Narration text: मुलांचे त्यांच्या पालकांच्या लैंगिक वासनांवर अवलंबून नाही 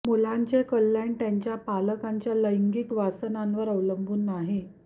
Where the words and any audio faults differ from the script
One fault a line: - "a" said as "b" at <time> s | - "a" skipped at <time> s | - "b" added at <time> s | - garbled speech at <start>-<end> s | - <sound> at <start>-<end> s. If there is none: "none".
- "कल्याण" added at 0.6 s